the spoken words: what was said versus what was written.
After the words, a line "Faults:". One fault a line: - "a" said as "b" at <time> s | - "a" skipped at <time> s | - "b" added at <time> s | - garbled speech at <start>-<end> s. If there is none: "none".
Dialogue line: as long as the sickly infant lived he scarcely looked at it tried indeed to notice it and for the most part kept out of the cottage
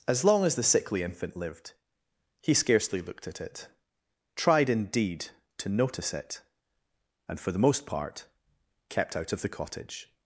as long as the sickly infant lived he scarcely looked at it tried indeed to notice it and for the most part kept out of the cottage
Faults:
none